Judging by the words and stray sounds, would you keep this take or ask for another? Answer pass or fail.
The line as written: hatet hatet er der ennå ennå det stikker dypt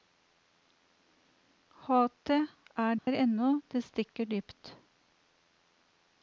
fail